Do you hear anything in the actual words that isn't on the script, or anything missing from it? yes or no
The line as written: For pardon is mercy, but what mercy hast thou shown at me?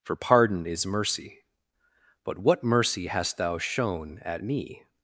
no